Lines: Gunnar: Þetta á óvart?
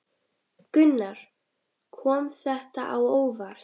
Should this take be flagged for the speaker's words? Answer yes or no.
yes